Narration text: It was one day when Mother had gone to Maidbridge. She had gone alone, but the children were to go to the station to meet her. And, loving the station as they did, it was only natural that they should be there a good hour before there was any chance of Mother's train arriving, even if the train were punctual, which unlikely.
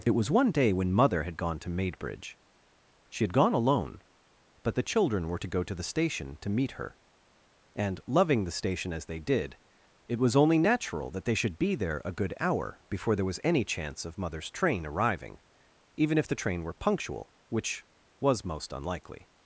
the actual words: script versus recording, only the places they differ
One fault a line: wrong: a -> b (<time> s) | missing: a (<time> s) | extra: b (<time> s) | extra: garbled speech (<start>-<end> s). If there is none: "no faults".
extra: was most (18.2 s)